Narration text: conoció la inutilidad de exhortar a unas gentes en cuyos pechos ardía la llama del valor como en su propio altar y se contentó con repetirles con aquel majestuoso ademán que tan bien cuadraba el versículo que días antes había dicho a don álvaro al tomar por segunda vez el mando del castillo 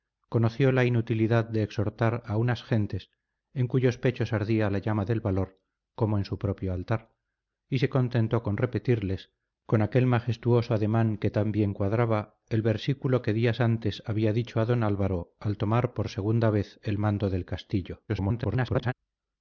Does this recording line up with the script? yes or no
no